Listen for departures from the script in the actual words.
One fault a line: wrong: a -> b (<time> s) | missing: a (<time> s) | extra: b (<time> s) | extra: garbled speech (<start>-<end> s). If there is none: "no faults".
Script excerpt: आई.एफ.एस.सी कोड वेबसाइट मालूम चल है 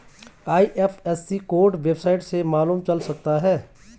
extra: से (2.2 s)
extra: सकता (3.0 s)